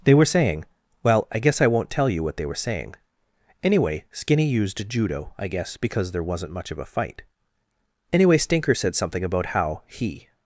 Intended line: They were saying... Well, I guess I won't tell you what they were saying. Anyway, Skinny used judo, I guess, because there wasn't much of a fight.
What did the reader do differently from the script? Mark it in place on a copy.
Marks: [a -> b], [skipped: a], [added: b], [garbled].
They were saying... Well, I guess I won't tell you what they were saying. Anyway, Skinny used judo, I guess, because there wasn't much of a fight. [added: Anyway Stinker said something about how he]